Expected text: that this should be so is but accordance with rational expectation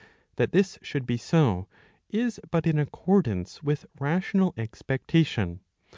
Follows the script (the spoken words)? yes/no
no